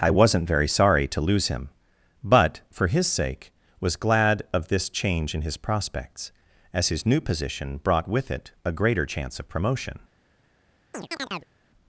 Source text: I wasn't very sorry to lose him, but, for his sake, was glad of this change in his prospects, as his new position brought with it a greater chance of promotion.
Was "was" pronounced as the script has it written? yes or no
yes